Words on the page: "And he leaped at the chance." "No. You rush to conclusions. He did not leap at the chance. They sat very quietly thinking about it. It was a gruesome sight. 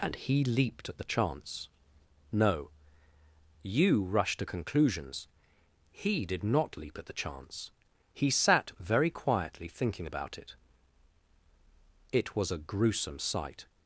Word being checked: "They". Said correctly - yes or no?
no